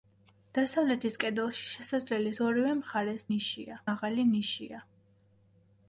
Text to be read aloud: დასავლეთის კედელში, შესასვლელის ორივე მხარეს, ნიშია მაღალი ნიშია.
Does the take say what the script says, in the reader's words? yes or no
yes